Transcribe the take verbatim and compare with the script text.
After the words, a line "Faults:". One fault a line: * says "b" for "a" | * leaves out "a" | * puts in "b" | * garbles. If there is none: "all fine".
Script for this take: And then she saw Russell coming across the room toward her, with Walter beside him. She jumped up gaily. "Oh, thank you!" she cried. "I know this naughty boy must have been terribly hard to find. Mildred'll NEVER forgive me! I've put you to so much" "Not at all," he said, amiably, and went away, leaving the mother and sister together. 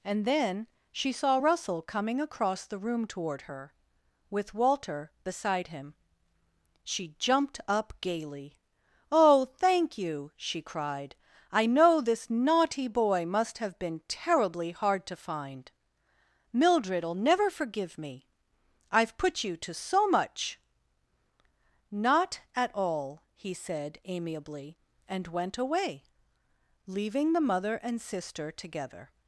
And then she saw Russell coming across the room toward her, with Walter beside him. She jumped up gaily. "Oh, thank you!" she cried. "I know this naughty boy must have been terribly hard to find. Mildred'll NEVER forgive me! I've put you to so much" "Not at all," he said, amiably, and went away, leaving the mother and sister together.
Faults:
all fine